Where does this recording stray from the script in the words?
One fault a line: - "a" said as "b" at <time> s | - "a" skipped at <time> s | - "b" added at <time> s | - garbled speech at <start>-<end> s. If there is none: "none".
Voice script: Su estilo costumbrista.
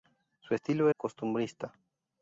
none